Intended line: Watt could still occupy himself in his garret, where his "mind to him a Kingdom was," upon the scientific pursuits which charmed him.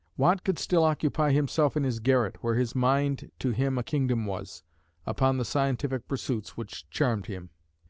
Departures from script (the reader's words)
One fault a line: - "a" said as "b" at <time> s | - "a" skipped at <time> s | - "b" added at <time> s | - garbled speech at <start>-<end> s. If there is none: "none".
none